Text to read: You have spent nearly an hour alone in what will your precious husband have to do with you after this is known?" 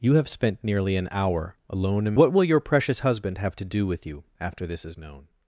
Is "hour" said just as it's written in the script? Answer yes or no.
yes